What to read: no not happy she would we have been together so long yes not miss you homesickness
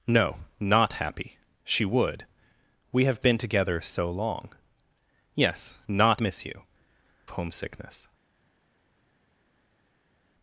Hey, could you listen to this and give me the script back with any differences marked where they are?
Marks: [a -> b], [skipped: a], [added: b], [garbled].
no not happy she would we have been together so long yes not miss you homesickness